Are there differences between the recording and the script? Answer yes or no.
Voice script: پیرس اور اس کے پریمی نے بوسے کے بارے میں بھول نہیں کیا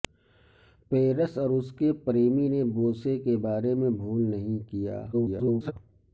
yes